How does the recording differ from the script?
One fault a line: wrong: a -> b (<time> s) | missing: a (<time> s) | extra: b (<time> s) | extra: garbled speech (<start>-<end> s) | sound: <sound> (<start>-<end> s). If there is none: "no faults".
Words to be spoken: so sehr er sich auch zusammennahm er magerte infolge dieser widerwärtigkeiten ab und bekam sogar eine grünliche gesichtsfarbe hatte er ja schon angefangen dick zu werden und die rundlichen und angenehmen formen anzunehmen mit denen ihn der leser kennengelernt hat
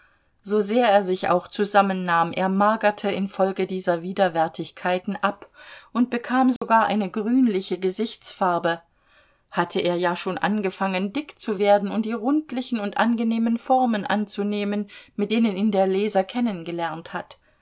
sound: dropout (6.6-6.6 s)